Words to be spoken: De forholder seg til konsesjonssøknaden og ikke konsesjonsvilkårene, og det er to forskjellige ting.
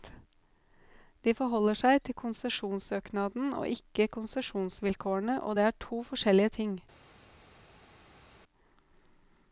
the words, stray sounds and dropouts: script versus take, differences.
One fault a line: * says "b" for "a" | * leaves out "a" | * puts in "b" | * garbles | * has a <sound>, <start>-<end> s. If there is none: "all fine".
all fine